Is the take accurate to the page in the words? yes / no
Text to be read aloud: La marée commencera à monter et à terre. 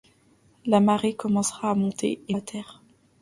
yes